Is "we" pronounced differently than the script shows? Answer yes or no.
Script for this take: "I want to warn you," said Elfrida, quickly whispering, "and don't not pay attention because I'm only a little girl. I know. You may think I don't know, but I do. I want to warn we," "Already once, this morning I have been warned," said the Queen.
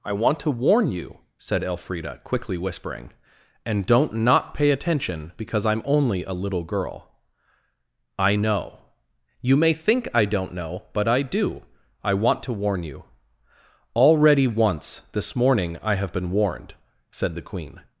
yes